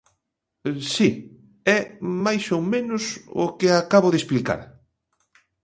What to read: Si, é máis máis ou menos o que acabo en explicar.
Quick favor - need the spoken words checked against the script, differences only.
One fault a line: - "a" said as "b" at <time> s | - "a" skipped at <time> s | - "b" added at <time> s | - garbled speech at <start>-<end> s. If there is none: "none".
- "máis" skipped at 2.4 s
- "en" said as "de" at 4.1 s